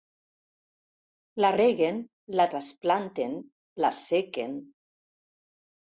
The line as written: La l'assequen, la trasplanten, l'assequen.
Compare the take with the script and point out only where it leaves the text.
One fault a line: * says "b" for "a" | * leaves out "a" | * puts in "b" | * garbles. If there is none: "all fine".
* says "reguen" for "l'assequen"